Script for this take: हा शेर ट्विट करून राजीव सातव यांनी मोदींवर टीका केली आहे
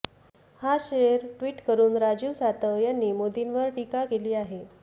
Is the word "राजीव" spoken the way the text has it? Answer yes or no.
yes